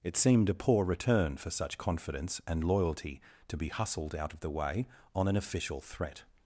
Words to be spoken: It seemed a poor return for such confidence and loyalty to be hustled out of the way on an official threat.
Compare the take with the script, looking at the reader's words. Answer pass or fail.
pass